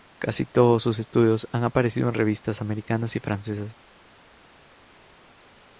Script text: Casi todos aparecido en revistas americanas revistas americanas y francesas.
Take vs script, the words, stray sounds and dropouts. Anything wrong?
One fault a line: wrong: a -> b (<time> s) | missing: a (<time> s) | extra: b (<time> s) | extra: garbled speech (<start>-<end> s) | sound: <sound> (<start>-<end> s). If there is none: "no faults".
extra: sus estudios han (0.8 s)
missing: revistas americanas (3.1 s)